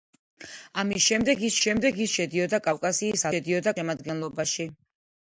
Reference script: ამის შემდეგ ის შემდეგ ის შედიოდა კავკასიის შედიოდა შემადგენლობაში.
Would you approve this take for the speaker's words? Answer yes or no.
yes